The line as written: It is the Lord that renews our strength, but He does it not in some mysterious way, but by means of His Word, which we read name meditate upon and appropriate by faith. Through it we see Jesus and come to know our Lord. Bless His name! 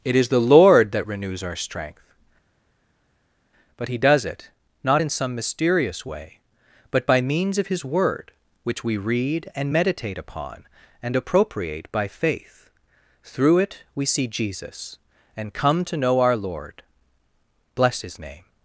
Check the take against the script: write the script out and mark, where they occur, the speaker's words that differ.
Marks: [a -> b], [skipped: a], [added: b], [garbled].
It is the Lord that renews our strength, but He does it not in some mysterious way, but by means of His Word, which we read [name -> and] meditate upon and appropriate by faith. Through it we see Jesus and come to know our Lord. Bless His name!